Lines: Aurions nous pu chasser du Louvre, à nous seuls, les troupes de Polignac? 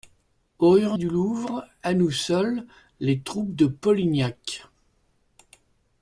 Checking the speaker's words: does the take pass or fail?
fail